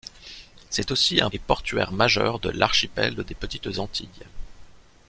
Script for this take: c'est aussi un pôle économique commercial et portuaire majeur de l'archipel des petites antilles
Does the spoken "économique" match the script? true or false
false